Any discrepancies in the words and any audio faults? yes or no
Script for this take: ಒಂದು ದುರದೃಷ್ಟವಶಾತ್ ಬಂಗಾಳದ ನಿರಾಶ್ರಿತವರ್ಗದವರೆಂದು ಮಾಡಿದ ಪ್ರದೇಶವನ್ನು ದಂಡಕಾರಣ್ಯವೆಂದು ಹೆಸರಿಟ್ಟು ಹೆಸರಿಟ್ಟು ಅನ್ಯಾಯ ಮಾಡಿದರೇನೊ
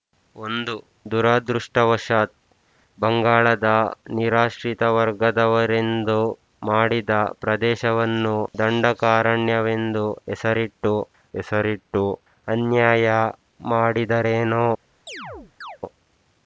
yes